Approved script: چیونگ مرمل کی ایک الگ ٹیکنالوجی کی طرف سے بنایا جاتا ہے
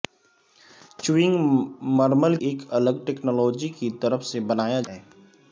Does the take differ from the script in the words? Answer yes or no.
yes